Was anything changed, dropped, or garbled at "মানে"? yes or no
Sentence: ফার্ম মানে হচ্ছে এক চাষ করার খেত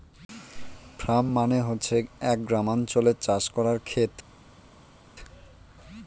no